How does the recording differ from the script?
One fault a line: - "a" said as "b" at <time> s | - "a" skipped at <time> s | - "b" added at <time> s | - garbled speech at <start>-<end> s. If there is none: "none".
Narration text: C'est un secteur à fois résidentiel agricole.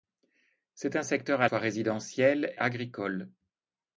none